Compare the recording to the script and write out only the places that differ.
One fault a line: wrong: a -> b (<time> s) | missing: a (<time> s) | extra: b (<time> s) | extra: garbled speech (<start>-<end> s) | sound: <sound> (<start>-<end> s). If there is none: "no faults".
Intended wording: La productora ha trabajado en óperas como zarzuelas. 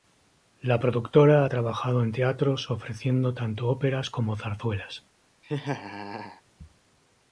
extra: teatros ofreciendo tanto (2.1 s)
sound: laugh (5.4-6.4 s)